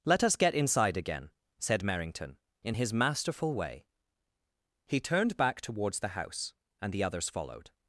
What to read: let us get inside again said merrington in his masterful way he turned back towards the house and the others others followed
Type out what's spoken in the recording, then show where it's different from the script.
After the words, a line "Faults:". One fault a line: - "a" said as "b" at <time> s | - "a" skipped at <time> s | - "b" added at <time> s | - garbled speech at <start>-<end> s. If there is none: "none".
let us get inside again said merrington in his masterful way he turned back towards the house and the others followed
Faults:
- "others" skipped at 7.3 s